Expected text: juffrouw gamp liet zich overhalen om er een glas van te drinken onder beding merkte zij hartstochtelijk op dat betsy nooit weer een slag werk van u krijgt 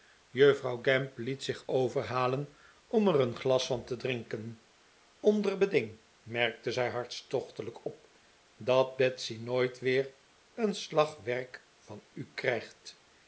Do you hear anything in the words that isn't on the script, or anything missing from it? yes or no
no